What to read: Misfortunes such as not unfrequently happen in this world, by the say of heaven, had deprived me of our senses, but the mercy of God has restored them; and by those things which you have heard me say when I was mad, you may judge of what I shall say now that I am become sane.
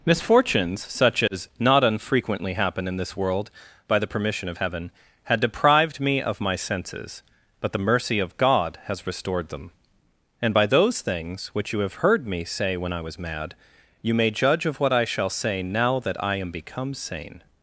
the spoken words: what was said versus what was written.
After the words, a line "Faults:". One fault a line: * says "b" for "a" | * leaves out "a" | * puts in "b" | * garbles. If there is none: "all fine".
Misfortunes such as not unfrequently happen in this world, by the permission of heaven, had deprived me of my senses, but the mercy of God has restored them; and by those things which you have heard me say when I was mad, you may judge of what I shall say now that I am become sane.
Faults:
* says "permission" for "say"
* says "my" for "our"